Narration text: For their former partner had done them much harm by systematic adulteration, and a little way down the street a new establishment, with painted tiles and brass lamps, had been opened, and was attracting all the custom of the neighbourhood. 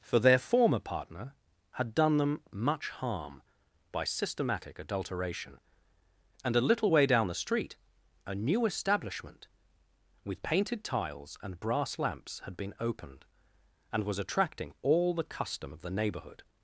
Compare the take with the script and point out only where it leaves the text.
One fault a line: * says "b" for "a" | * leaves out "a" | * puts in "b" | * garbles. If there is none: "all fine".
all fine